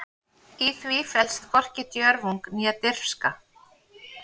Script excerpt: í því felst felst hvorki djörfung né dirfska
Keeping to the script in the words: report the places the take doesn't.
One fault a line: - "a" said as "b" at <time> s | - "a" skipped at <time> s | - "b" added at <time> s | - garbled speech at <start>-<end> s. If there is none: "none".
- "felst" skipped at 1.4 s